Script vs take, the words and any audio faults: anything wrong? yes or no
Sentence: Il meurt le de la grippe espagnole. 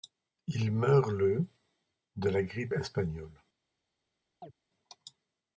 yes